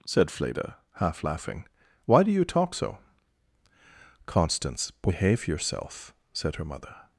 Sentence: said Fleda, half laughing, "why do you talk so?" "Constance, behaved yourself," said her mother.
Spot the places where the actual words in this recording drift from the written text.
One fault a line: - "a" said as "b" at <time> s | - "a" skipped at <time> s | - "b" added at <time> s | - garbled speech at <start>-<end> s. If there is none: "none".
- "behaved" said as "behave" at 4.9 s